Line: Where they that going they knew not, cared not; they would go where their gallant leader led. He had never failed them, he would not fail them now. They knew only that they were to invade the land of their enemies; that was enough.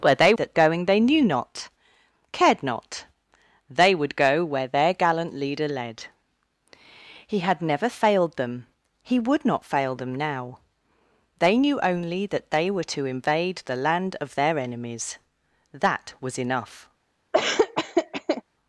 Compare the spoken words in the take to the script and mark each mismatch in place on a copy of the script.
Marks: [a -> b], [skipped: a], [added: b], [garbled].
Where they that going they knew not, cared not; they would go where their gallant leader led. He had never failed them, he would not fail them now. They knew only that they were to invade the land of their enemies; that was enough.